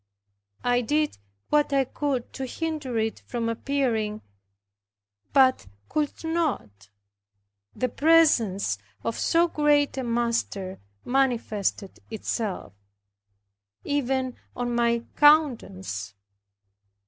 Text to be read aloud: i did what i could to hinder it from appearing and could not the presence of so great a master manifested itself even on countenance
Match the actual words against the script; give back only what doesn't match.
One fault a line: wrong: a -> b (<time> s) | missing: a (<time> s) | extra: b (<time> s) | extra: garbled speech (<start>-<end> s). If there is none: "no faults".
wrong: and -> but (5.3 s)
extra: my (14.7 s)